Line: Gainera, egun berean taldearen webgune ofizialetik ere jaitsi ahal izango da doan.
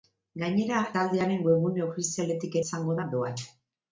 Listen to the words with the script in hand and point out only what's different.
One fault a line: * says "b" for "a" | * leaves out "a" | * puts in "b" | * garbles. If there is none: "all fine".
* leaves out "egun berean"
* leaves out "ere jaitsi ahal"